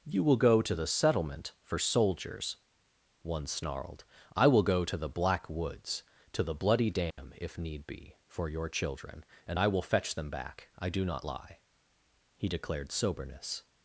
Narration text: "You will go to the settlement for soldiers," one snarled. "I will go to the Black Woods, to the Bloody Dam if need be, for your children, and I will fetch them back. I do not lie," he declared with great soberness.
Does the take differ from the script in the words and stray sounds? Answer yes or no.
yes